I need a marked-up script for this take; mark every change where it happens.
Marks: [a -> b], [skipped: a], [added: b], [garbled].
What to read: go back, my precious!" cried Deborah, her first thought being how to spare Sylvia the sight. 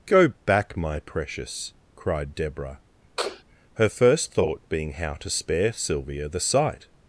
go back, my precious!" cried Deborah, her first thought being how to spare Sylvia the sight.